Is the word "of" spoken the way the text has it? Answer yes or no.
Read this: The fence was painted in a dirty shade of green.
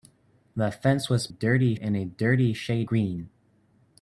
no